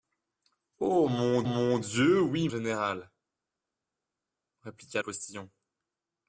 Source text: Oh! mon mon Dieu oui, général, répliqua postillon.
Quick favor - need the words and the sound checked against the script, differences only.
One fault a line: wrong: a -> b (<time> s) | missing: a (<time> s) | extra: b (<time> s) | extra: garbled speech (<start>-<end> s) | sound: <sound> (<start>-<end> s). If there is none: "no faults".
no faults